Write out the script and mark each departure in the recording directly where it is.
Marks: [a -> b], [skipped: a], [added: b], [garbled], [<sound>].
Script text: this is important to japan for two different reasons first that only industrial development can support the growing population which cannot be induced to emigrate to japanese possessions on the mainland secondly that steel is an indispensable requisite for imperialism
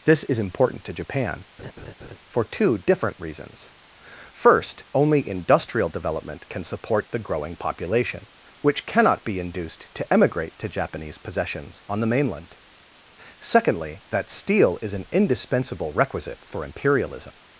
this is important to japan [laugh] for two different reasons first [skipped: that] only industrial development can support the growing population which cannot be induced to emigrate to japanese possessions on the mainland secondly that steel is an indispensable requisite for imperialism